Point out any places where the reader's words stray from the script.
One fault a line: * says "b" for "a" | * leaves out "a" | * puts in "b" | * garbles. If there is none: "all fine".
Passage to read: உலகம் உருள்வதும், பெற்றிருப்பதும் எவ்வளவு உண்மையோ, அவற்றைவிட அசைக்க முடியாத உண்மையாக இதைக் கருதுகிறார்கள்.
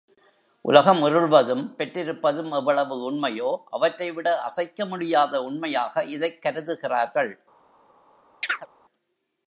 all fine